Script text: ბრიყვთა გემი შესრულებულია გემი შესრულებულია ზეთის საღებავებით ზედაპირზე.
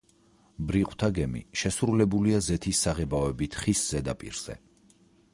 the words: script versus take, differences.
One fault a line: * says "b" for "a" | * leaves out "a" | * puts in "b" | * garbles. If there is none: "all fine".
* leaves out "გემი შესრულებულია"
* puts in "ხის"